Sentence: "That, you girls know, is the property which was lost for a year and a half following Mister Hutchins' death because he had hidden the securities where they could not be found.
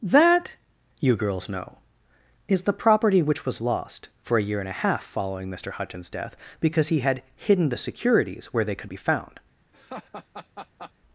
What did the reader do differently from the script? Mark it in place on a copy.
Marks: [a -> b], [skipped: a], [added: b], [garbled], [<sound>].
"That, you girls know, is the property which was lost for a year and a half following Mister Hutchins' death because he had hidden the securities where they could [skipped: not] be found. [laugh]